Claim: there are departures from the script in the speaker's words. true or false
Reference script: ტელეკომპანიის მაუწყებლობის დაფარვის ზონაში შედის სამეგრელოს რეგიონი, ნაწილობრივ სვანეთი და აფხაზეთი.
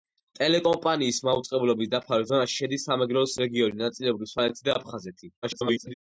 true